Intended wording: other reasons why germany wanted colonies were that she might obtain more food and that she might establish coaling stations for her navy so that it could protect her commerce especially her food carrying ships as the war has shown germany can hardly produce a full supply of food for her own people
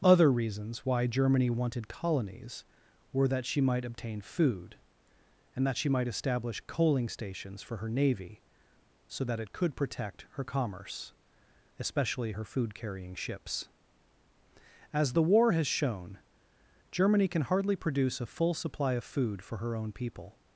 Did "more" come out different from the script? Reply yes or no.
yes